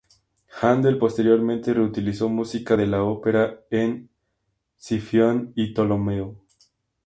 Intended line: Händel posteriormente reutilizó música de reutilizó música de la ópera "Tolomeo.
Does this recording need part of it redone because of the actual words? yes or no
yes